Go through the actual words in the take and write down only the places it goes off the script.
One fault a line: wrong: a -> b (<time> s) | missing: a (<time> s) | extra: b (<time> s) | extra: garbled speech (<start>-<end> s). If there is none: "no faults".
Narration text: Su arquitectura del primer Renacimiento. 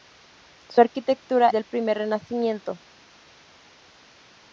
no faults